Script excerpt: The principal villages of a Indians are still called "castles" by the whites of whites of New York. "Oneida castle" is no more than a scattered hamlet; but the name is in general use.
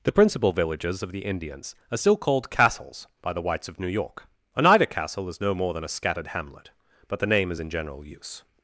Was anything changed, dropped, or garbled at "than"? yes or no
no